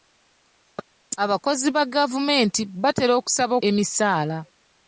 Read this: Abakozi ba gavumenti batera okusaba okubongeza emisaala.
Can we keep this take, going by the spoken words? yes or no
no